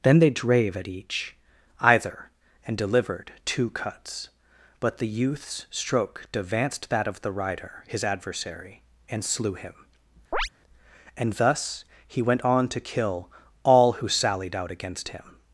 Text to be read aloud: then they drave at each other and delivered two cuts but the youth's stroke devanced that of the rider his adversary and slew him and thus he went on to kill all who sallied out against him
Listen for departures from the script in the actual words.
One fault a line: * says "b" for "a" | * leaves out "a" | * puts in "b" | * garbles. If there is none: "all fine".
* says "either" for "other"